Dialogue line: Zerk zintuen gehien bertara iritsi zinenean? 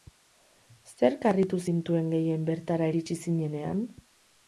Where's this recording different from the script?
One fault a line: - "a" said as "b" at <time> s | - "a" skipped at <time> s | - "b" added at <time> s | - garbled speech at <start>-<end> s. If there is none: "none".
- "harritu" added at 1.3 s